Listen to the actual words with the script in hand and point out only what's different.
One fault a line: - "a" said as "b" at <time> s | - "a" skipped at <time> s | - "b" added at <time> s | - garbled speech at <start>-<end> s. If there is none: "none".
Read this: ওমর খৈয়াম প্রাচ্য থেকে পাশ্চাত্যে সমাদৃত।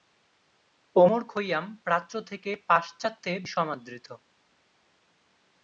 none